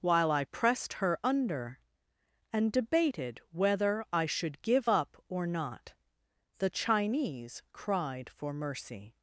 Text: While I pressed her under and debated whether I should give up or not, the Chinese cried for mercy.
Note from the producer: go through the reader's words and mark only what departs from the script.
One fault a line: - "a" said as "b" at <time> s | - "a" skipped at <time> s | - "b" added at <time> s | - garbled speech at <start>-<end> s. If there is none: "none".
none